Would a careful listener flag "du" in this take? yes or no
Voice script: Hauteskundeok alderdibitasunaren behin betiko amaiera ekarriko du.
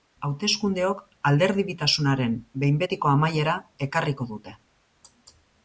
yes